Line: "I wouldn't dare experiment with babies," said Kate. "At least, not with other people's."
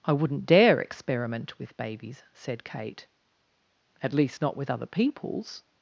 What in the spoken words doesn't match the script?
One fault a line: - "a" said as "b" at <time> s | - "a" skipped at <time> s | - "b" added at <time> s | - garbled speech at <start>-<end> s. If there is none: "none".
none